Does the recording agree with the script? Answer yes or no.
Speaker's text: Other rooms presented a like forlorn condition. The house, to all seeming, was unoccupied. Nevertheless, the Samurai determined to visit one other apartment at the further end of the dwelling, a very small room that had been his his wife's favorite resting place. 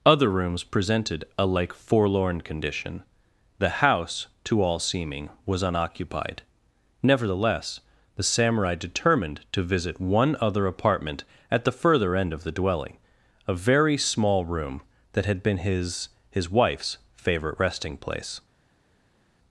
yes